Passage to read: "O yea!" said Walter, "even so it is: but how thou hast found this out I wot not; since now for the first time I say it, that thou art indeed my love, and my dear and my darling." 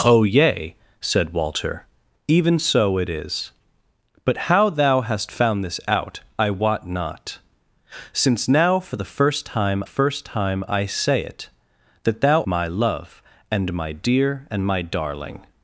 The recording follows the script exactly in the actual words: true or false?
false